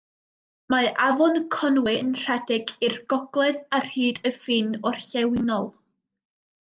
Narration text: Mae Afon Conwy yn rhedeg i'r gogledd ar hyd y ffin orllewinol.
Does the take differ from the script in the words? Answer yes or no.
no